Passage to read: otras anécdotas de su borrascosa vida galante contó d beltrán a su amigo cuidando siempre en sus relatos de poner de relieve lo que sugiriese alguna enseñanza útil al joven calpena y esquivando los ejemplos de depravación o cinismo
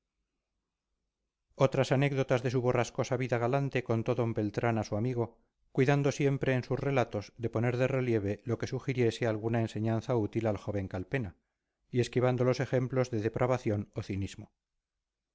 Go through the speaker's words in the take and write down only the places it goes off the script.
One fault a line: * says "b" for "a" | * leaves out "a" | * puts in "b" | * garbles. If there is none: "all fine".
all fine